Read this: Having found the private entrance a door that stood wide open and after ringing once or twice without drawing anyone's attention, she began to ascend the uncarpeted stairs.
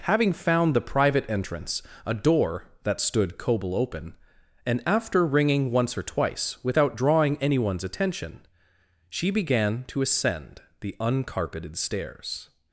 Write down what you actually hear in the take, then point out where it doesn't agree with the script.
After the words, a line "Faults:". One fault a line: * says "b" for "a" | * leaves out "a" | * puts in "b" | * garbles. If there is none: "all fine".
Having found the private entrance a door that stood coble open and after ringing once or twice without drawing anyone's attention, she began to ascend the uncarpeted stairs.
Faults:
* says "coble" for "wide"